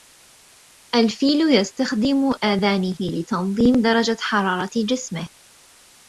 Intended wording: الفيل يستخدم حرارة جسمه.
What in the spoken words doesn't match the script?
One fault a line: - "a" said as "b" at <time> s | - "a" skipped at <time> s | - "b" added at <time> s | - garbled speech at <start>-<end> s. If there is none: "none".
- "آذانه لتنظيم درجة" added at 2.4 s